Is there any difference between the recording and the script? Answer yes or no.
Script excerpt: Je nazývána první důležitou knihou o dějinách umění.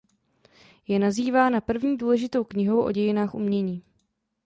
no